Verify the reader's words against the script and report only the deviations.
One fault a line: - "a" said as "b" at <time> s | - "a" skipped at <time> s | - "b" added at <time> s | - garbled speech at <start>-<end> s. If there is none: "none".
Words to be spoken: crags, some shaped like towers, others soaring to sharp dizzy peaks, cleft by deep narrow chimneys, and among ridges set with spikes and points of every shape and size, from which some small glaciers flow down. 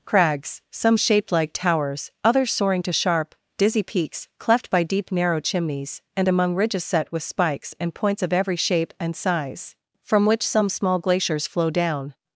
none